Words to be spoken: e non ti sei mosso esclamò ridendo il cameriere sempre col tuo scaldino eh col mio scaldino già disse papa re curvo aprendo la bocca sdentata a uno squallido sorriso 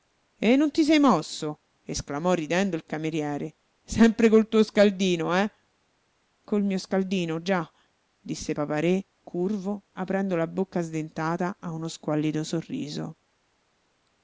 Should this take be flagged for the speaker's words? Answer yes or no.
no